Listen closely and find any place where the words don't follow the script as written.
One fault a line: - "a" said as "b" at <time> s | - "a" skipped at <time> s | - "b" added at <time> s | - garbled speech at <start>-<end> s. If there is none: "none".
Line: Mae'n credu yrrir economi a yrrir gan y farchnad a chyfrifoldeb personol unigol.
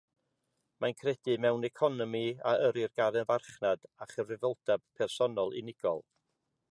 - "yrrir" said as "mewn" at 1.4 s